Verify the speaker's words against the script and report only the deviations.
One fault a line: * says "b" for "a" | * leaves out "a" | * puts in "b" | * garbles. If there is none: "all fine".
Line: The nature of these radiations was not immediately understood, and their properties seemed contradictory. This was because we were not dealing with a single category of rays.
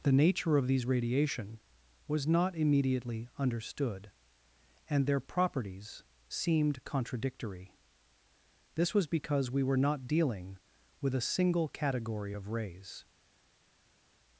* says "radiation" for "radiations"